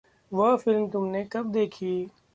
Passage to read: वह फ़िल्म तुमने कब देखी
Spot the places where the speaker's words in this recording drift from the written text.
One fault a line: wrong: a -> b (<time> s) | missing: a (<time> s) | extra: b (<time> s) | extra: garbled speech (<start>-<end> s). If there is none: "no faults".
no faults